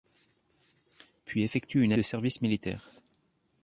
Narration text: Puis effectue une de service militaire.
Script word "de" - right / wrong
right